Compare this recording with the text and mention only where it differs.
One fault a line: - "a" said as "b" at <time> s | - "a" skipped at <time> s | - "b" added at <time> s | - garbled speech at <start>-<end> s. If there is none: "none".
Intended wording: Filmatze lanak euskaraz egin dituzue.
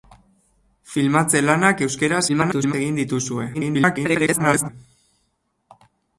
- garbled speech at 2.3-2.7 s
- garbled speech at 3.5-4.7 s